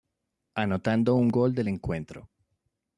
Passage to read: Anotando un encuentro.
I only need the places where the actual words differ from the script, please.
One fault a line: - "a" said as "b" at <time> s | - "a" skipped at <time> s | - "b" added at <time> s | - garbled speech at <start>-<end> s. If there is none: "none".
- "gol del" added at 1.3 s